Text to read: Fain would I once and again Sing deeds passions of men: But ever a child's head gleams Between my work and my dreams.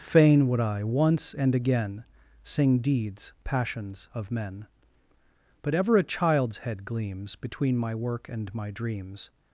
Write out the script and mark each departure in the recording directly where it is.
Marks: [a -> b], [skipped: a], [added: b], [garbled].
Fain would I once and again Sing deeds passions of men: But ever a child's head gleams Between my work and my dreams.